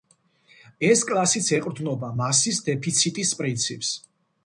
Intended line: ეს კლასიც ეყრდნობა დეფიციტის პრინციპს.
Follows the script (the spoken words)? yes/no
no